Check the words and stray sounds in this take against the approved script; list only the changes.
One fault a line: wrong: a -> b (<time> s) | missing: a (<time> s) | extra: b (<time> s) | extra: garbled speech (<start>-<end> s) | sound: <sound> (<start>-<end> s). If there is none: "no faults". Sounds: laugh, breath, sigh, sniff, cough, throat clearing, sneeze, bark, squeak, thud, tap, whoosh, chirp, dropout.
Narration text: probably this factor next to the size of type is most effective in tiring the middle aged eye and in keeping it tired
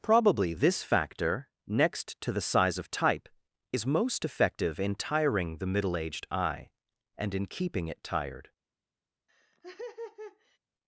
sound: laugh (9.3-10.6 s)